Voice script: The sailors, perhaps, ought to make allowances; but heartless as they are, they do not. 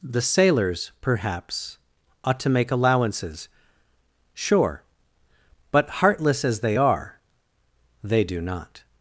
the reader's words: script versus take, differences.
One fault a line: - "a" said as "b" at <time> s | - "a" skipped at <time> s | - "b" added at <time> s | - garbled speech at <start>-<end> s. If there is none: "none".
- "sure" added at 4.3 s